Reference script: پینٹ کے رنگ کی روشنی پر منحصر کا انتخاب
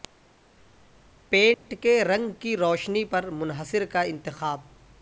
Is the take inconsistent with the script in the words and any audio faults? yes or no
yes